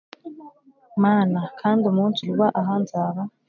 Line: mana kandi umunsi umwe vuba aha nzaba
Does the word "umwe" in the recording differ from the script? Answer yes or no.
yes